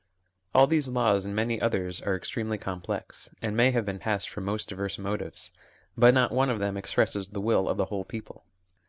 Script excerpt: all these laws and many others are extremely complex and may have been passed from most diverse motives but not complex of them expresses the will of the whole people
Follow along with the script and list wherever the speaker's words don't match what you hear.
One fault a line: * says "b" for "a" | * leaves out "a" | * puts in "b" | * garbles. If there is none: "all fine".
* says "one" for "complex"